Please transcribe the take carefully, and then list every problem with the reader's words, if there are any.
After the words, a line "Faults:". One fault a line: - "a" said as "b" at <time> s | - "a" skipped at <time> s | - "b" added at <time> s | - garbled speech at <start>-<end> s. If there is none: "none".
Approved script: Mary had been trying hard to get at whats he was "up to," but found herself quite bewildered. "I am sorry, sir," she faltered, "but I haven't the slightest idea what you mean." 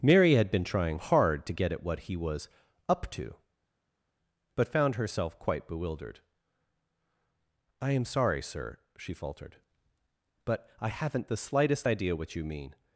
Mary had been trying hard to get at what he was "up to," but found herself quite bewildered. "I am sorry, sir," she faltered, "but I haven't the slightest idea what you mean."
Faults:
- "whats" said as "what" at 1.8 s